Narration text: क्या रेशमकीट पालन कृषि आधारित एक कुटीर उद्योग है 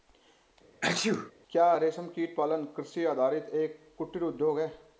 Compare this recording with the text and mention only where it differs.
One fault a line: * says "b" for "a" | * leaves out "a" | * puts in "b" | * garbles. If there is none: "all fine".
all fine